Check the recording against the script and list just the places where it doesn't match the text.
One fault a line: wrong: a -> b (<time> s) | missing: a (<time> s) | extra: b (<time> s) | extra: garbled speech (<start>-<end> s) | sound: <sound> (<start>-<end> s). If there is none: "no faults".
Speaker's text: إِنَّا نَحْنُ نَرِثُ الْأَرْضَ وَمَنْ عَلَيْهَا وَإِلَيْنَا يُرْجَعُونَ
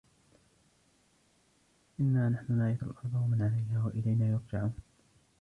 no faults